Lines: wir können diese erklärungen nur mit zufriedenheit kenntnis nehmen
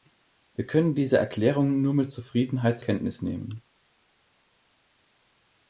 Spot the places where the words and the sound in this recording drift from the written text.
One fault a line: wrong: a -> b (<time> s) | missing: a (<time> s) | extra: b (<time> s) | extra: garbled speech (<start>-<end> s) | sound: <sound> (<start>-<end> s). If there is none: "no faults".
no faults